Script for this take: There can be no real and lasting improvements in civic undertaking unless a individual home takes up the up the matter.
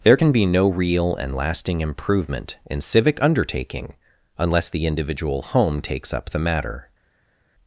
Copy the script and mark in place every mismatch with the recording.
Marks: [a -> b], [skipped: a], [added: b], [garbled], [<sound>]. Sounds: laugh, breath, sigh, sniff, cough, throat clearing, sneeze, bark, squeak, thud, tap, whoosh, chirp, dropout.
There can be no real and lasting [improvements -> improvement] in civic undertaking unless [a -> the] individual home takes up the [skipped: up the] matter.